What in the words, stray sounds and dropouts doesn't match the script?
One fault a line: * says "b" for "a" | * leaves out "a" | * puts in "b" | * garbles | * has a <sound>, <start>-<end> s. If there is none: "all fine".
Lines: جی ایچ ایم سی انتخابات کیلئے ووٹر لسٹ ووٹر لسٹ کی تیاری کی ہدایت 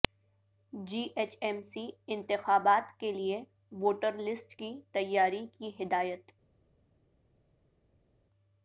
* leaves out "ووٹر لسٹ"